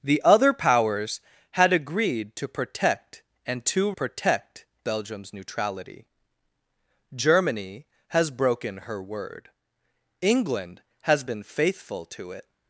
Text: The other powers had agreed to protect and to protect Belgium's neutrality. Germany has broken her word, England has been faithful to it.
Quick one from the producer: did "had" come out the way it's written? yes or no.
yes